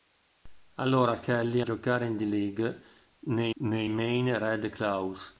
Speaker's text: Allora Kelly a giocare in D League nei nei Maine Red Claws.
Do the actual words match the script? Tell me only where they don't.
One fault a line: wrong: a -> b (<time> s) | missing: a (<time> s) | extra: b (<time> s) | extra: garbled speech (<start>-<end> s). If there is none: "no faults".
no faults